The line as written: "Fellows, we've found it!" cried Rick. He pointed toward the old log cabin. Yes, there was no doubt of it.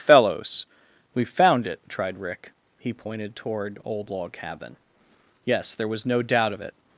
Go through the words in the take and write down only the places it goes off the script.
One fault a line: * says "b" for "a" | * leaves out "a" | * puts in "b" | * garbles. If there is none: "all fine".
* says "tried" for "cried"
* leaves out "the"